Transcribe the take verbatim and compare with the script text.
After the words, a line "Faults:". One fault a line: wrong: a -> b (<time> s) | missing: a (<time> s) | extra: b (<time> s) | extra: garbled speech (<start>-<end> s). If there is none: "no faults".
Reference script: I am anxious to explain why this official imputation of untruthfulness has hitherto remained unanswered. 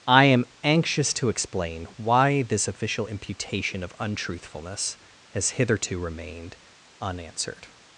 I am anxious to explain why this official imputation of untruthfulness has hitherto remained unanswered.
Faults:
no faults